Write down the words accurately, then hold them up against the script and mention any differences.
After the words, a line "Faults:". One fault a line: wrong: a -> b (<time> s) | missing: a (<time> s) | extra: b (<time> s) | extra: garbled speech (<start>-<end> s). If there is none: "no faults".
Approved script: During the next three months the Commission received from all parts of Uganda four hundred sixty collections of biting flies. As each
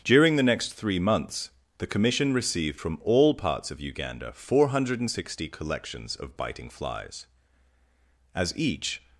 During the next three months the Commission received from all parts of Uganda four hundred sixty collections of biting flies. As each
Faults:
no faults